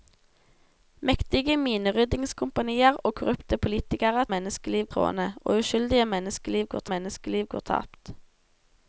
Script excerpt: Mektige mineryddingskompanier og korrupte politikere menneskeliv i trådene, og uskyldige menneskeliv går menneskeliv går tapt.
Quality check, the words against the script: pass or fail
pass